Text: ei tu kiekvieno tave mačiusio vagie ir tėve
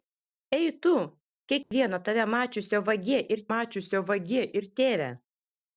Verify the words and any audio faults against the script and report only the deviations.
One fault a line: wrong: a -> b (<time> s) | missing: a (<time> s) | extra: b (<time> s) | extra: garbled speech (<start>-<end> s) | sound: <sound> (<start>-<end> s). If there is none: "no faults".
sound: dropout (1.6-1.7 s)
extra: mačiusio vagie ir (3.5 s)